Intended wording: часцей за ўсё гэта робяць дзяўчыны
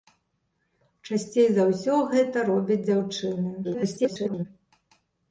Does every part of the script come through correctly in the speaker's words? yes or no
no